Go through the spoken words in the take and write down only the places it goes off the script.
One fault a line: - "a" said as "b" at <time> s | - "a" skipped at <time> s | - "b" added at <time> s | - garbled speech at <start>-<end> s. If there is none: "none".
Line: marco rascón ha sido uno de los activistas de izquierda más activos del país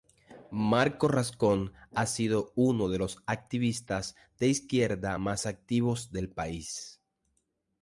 none